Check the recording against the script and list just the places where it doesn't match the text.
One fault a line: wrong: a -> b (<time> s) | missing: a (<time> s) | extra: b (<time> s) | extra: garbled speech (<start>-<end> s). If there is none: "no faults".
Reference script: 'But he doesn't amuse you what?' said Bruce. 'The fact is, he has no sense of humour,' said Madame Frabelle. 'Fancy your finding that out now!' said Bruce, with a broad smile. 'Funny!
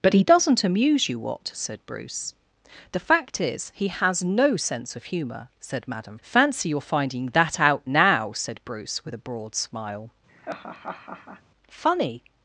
missing: Frabelle (6.2 s)